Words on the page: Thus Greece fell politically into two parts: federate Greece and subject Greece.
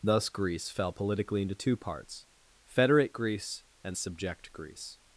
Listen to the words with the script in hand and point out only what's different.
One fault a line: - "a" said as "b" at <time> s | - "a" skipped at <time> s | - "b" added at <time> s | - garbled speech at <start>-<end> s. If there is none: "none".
none